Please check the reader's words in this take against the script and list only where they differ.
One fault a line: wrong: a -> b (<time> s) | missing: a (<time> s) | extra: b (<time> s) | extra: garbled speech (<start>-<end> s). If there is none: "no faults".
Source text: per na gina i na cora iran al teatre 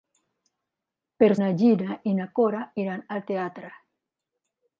no faults